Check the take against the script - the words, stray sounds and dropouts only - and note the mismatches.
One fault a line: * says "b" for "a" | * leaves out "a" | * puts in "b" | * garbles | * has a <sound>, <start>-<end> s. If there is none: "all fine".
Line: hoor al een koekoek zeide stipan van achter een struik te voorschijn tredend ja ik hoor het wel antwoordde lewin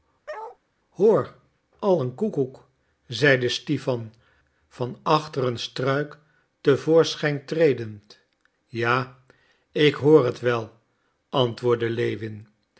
* has a bark, 0.3-0.6 s